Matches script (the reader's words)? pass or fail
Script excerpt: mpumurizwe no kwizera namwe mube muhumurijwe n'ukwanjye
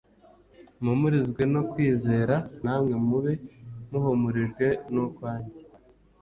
pass